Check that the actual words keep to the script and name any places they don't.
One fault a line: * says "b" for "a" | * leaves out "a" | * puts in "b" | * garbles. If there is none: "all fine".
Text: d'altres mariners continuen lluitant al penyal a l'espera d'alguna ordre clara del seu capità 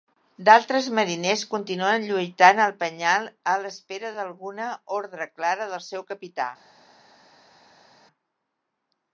all fine